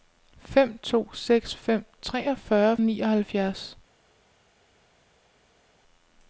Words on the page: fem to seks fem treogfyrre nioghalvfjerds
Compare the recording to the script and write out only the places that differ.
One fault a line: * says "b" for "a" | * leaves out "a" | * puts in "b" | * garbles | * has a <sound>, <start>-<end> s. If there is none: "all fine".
all fine